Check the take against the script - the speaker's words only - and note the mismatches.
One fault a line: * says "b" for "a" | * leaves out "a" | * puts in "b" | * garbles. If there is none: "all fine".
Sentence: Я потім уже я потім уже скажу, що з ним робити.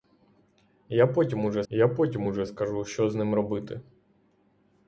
all fine